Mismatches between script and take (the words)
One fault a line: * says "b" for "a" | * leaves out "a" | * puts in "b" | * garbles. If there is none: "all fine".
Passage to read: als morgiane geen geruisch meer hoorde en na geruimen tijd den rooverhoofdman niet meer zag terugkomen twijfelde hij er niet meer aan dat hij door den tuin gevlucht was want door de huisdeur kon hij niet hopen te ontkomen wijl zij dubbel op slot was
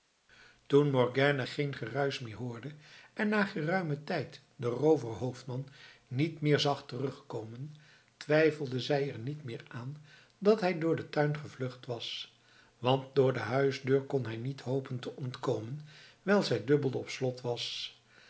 * says "toen" for "als"
* says "zij" for "hij"